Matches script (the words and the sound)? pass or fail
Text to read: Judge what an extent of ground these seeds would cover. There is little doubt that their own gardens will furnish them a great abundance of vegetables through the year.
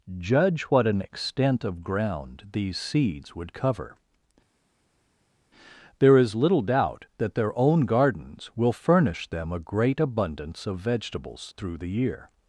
pass